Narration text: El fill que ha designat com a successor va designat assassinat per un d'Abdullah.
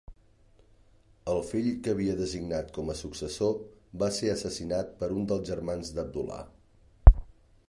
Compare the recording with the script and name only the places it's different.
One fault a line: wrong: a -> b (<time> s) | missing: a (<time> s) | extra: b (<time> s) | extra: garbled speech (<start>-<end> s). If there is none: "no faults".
wrong: ha -> havia (2.0 s)
wrong: designat -> ser (4.2 s)
extra: dels germans (5.3 s)